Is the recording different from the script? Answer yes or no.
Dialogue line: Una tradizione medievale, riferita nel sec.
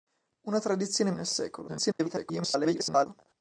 yes